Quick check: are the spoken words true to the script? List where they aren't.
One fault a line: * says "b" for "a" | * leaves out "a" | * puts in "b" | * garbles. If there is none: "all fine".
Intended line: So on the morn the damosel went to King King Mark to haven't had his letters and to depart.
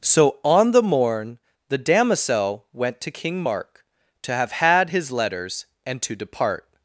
* leaves out "King"
* says "have" for "haven't"